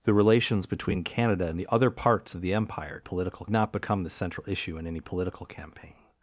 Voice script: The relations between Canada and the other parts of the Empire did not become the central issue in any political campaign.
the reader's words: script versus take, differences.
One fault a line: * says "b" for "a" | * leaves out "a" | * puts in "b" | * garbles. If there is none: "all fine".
* says "political" for "did"